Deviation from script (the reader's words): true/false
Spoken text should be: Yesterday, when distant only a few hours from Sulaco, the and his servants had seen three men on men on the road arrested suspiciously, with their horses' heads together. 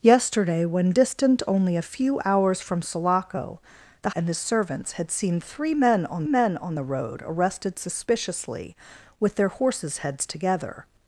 false